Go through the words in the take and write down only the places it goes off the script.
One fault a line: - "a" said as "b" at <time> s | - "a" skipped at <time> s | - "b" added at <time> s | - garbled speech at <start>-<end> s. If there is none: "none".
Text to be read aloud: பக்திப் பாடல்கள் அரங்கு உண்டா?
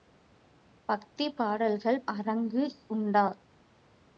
none